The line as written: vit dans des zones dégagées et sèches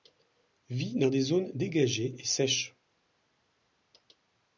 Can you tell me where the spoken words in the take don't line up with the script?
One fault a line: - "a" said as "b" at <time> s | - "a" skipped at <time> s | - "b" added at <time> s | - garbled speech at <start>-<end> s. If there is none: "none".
none